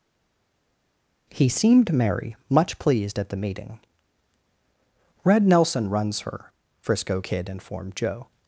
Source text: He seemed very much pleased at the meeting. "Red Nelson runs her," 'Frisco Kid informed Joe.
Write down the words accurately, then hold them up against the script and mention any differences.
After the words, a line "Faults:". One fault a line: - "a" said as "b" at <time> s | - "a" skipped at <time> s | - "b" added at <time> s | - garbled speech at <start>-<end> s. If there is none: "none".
He seemed merry much pleased at the meeting. "Red Nelson runs her," 'Frisco Kid informed Joe.
Faults:
- "very" said as "merry" at 1.9 s